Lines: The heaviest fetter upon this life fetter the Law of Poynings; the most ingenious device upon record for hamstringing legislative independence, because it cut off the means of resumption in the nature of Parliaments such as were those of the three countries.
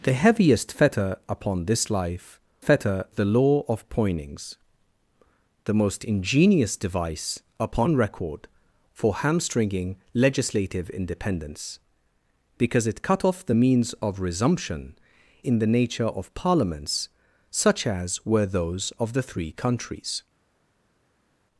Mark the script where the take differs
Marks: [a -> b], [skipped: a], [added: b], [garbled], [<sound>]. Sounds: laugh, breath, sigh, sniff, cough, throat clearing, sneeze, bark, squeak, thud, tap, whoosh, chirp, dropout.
The heaviest fetter upon this life fetter the Law of Poynings; the most ingenious device upon record for hamstringing legislative independence, because it cut off the means of resumption in the nature of Parliaments such as were those of the three countries.